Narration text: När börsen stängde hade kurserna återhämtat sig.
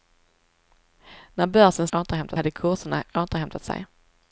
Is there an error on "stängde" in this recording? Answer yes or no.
yes